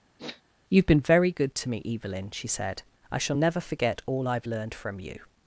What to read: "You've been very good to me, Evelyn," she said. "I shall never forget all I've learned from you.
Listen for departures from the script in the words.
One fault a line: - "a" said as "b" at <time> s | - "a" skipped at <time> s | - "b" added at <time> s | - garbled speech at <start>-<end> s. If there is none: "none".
none